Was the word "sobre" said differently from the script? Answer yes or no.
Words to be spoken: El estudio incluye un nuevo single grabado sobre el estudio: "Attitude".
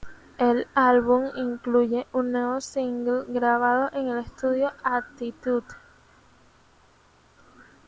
yes